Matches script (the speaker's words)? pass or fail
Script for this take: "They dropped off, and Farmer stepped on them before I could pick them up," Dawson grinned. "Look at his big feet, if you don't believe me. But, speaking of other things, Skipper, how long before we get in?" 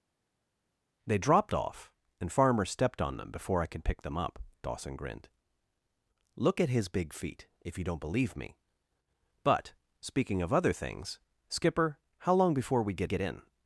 fail